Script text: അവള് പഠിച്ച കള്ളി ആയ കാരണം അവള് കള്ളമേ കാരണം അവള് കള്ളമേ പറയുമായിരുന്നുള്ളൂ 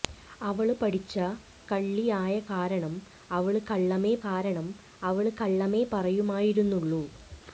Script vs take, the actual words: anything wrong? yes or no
no